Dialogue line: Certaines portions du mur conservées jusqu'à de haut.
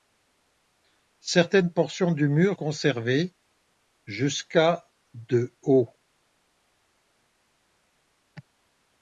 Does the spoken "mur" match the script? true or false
true